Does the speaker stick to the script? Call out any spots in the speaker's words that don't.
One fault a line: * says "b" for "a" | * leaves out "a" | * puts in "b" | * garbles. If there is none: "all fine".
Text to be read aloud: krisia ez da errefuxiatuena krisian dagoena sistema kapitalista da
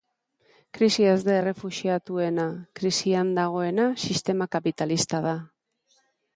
all fine